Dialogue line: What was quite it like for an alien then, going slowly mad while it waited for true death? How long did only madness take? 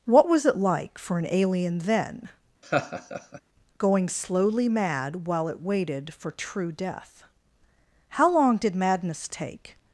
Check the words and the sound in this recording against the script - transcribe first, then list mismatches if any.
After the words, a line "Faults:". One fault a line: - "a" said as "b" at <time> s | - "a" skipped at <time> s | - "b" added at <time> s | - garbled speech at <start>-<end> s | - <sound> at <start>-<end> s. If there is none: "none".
What was it like for an alien then, going slowly mad while it waited for true death? How long did madness take?
Faults:
- "quite" skipped at 0.5 s
- laugh at 2.6-3.4 s
- "only" skipped at 8.7 s